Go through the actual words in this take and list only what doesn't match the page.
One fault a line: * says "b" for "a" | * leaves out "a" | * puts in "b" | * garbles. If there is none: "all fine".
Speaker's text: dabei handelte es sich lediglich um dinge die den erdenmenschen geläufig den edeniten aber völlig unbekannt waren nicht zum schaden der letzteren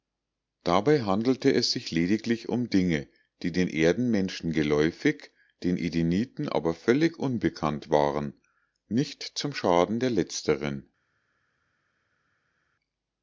all fine